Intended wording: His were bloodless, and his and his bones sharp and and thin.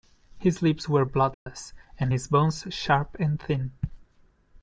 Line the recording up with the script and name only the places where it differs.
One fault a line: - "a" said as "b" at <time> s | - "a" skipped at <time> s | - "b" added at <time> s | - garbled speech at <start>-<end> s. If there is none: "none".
- "lips" added at 0.6 s
- "and his" skipped at 2.3 s
- "and" skipped at 3.4 s